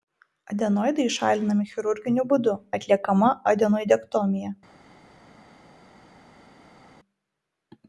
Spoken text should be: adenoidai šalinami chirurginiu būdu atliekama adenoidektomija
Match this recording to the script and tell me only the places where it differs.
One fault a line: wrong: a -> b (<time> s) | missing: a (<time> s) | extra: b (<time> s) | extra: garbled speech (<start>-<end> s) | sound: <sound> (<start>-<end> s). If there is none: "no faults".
no faults